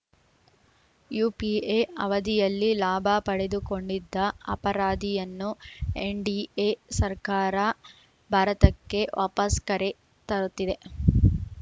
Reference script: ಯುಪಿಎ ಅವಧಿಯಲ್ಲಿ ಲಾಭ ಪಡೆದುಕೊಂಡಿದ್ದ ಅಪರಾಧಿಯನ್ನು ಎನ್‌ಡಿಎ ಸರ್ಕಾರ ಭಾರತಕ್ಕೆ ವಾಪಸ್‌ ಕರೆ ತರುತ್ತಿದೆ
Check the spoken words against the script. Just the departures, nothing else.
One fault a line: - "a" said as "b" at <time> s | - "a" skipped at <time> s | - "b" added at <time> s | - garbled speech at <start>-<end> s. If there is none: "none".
none